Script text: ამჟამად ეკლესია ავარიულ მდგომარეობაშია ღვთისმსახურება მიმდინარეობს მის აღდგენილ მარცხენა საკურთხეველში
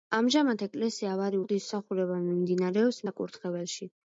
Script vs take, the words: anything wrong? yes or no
yes